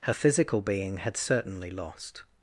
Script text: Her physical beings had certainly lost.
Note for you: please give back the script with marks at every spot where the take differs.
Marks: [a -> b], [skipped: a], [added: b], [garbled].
Her physical [beings -> being] had certainly lost.